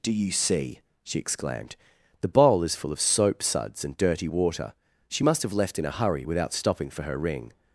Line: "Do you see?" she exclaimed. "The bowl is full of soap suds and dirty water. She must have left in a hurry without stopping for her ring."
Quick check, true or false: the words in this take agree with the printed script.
true